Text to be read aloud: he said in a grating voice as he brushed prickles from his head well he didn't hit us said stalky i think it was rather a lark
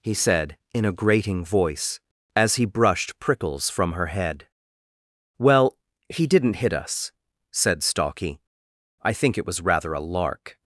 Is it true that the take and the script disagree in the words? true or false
true